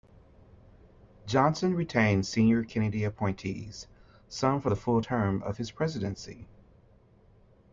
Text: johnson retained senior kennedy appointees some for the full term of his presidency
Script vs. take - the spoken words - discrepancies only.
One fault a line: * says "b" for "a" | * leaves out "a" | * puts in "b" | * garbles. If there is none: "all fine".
all fine